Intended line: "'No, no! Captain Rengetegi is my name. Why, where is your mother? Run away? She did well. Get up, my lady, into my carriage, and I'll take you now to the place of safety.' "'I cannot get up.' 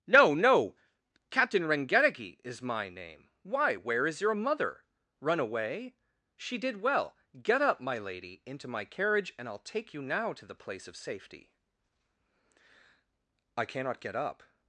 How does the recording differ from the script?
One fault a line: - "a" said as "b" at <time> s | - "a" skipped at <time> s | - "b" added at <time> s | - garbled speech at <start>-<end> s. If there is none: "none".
none